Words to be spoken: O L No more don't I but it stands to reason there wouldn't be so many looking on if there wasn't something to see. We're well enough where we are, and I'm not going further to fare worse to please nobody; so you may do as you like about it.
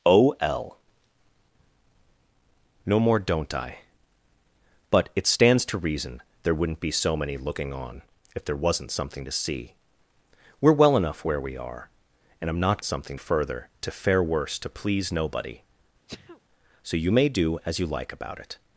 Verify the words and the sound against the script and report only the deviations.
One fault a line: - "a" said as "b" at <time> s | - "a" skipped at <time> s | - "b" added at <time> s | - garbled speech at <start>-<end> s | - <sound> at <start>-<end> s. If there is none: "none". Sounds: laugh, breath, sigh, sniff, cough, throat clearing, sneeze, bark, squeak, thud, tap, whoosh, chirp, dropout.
- "going" said as "something" at 12.8 s
- sneeze at 16.1-16.4 s